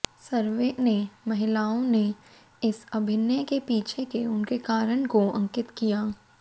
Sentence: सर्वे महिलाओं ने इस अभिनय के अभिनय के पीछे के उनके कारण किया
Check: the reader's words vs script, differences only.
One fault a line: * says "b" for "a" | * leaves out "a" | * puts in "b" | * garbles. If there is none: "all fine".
* puts in "ने"
* leaves out "अभिनय के"
* puts in "को अंकित"